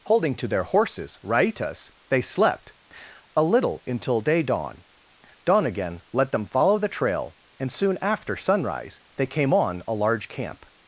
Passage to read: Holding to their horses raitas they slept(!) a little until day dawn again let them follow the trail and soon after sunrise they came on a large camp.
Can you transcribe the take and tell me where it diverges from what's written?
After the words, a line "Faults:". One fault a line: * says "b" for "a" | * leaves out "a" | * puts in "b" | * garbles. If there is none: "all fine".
Holding to their horses raitas they slept(!) a little until day dawn dawn again let them follow the trail and soon after sunrise they came on a large camp.
Faults:
* puts in "dawn"